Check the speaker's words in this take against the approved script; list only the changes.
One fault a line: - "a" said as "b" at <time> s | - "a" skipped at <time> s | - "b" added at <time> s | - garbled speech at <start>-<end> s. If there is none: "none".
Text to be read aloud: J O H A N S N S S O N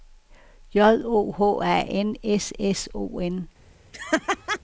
- "N S" skipped at 2.5 s